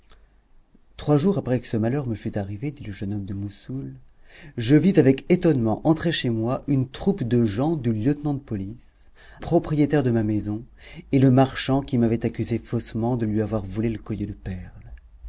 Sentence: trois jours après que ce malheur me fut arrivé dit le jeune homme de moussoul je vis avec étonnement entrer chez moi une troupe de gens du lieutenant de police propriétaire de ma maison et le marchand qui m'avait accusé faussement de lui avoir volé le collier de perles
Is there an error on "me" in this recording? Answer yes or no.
no